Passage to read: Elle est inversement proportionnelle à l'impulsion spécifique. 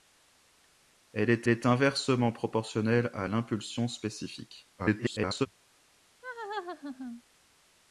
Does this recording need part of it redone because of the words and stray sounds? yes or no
yes